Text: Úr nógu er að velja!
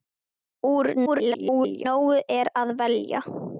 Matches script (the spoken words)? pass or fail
fail